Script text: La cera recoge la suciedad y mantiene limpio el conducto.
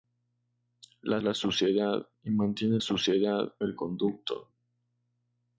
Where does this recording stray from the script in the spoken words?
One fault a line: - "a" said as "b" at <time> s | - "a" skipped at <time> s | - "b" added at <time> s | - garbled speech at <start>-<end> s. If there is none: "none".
- "cera recoge" skipped at 1.2 s
- "limpio" said as "suciedad" at 2.8 s